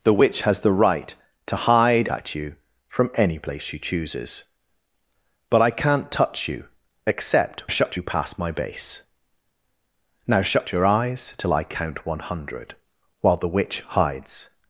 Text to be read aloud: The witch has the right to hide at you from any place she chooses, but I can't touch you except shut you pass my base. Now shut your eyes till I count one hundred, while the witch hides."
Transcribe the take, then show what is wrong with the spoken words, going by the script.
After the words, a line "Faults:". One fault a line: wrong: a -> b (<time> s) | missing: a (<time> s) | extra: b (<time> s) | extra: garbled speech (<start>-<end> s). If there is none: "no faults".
The witch has the right to hide at you from any place she chooses, but I can't touch you except shut you pass my base. Now shut your eyes till I count one hundred, while the witch hides."
Faults:
no faults